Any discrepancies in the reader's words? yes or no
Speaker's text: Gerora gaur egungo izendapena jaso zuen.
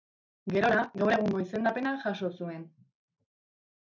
no